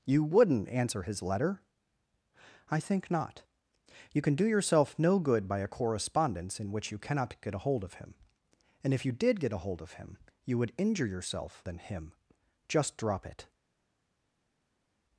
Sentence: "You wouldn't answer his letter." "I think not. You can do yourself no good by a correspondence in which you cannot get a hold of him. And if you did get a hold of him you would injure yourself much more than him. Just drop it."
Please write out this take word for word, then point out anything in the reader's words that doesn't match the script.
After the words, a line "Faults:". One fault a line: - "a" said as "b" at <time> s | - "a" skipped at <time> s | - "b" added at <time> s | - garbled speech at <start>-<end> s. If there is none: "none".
"You wouldn't answer his letter." "I think not. You can do yourself no good by a correspondence in which you cannot get a hold of him. And if you did get a hold of him you would injure yourself than him. Just drop it."
Faults:
- "much more" skipped at 11.6 s